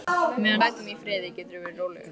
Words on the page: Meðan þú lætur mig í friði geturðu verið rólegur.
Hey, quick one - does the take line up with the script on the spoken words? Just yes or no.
no